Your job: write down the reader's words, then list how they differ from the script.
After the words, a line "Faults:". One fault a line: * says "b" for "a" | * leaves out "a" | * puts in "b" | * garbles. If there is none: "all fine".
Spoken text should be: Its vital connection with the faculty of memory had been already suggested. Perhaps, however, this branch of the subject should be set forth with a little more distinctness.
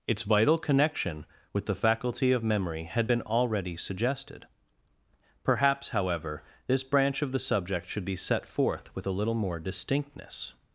Its vital connection with the faculty of memory had been already suggested. Perhaps, however, this branch of the subject should be set forth with a little more distinctness.
Faults:
all fine